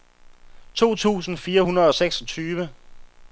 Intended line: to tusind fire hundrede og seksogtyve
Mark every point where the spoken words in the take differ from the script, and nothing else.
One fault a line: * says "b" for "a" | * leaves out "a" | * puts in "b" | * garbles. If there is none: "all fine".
all fine